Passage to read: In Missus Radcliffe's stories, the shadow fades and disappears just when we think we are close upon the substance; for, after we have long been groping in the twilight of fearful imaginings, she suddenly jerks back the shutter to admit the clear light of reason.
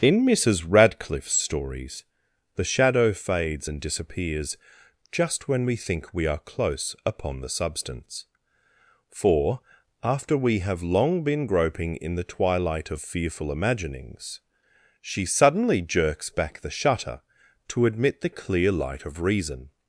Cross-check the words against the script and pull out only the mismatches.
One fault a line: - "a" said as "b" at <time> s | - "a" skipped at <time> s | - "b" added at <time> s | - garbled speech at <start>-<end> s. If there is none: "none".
none